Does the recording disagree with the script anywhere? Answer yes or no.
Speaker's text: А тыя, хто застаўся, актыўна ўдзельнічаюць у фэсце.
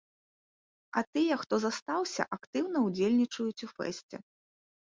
no